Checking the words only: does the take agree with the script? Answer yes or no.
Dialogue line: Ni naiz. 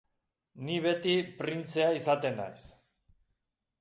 no